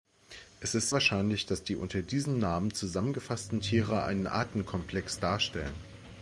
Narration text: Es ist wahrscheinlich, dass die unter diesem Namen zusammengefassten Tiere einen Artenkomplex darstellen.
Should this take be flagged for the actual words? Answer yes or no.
no